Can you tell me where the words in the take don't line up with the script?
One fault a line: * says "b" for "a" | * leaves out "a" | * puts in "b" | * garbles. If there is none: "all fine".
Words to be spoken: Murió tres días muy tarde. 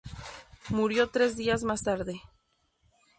* says "más" for "muy"